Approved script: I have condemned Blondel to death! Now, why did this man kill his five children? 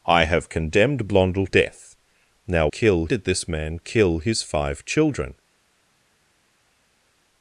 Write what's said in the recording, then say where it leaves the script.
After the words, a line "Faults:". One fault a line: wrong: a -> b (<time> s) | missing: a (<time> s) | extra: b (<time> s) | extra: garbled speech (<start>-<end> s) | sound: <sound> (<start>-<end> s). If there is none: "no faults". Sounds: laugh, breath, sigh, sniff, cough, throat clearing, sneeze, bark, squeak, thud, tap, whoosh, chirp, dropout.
I have condemned Blondel death! Now, kill did this man kill his five children?
Faults:
missing: to (1.4 s)
wrong: why -> kill (2.7 s)